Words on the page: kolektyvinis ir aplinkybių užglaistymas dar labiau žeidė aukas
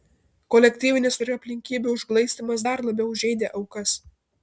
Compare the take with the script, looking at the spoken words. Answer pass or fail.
pass